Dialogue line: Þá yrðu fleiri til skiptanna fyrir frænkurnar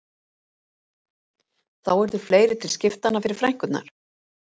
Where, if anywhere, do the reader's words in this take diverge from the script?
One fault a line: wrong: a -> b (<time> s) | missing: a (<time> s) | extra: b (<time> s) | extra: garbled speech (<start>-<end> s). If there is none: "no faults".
no faults